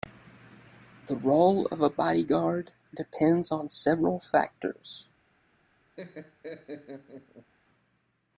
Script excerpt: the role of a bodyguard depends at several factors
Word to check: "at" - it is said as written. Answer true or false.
false